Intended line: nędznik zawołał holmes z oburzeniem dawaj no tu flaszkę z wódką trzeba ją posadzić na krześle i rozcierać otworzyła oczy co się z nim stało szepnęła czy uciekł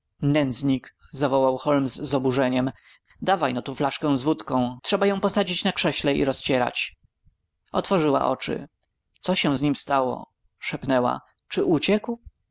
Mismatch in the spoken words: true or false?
false